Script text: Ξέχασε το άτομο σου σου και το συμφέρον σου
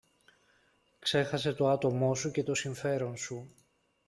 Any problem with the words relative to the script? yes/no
yes